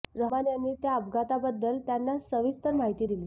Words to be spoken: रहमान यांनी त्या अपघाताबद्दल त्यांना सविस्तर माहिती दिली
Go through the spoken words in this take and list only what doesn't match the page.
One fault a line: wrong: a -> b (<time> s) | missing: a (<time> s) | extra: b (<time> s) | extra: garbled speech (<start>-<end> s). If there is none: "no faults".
no faults